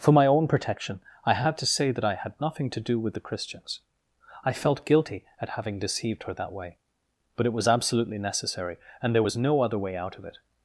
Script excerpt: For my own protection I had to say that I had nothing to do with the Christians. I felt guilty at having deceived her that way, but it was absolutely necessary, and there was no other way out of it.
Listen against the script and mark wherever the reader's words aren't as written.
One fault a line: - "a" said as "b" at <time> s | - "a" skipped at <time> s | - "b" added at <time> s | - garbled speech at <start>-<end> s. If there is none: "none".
none